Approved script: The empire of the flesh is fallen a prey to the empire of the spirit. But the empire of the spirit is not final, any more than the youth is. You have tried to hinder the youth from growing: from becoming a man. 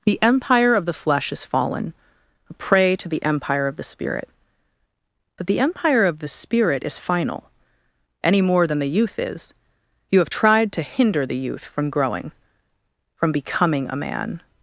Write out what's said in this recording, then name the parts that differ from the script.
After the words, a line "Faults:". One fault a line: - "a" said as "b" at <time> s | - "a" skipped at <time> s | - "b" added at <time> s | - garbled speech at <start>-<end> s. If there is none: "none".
The empire of the flesh is fallen a prey to the empire of the spirit. But the empire of the spirit is final, any more than the youth is. You have tried to hinder the youth from growing: from becoming a man.
Faults:
- "not" skipped at 7.0 s